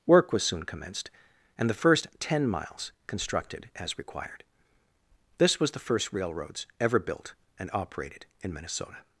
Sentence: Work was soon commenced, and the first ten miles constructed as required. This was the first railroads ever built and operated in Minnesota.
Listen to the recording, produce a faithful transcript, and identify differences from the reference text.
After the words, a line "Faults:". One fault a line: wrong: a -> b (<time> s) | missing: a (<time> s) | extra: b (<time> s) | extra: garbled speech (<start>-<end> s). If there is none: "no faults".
Work was soon commenced, and the first ten miles constructed as required. This was the first railroads ever built and operated in Minnesota.
Faults:
no faults